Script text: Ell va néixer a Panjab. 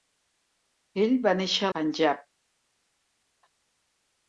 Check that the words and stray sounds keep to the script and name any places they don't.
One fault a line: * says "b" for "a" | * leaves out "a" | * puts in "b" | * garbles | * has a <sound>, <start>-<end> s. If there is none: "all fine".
all fine